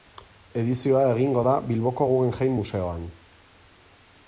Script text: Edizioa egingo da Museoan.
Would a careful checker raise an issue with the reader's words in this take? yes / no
yes